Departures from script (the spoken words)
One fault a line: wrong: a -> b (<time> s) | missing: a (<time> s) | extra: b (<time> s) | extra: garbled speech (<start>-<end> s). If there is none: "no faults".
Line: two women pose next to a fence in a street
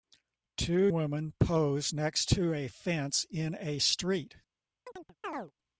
no faults